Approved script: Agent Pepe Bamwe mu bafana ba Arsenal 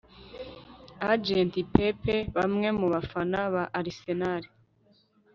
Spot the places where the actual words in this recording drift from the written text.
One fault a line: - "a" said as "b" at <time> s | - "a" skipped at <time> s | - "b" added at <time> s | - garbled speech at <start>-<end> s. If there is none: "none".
none